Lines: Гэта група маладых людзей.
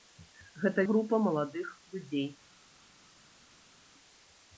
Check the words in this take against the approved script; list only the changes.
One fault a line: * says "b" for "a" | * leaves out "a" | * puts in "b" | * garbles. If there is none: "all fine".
all fine